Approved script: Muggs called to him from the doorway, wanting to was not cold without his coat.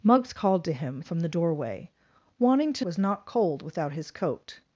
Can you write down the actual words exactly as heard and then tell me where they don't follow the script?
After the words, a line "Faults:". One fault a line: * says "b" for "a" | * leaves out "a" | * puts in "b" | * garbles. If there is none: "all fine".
Muggs called to him from the doorway, wanting to was not cold without his coat.
Faults:
all fine